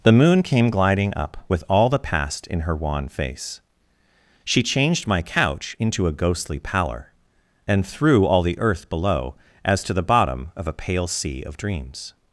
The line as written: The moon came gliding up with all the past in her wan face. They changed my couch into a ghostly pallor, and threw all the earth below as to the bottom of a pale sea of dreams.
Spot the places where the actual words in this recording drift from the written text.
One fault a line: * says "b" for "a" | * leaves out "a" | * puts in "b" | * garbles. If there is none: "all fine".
* says "She" for "They"